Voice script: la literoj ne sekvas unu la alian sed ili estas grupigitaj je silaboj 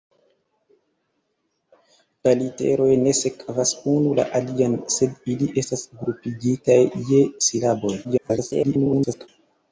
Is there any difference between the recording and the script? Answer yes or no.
yes